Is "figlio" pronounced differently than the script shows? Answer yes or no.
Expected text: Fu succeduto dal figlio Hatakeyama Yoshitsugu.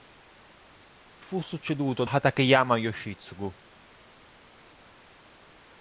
yes